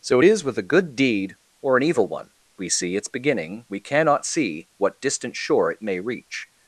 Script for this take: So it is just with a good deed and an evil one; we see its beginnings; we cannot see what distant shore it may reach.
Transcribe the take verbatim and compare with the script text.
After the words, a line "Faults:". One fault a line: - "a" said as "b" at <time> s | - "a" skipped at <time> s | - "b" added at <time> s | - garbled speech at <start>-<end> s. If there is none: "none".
So it is with a good deed or an evil one; we see its beginning; we cannot see what distant shore it may reach.
Faults:
- "just" skipped at 0.4 s
- "and" said as "or" at 1.6 s
- "beginnings" said as "beginning" at 3.1 s